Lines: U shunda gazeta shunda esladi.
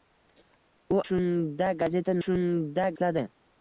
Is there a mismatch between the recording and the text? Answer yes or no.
no